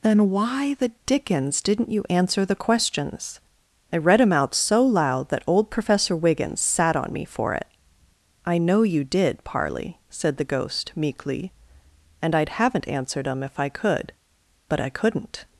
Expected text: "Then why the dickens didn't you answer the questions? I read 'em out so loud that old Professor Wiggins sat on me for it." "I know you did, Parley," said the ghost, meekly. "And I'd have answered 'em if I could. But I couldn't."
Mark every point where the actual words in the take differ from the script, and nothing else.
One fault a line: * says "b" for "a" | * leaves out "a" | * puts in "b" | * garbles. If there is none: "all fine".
* says "haven't" for "have"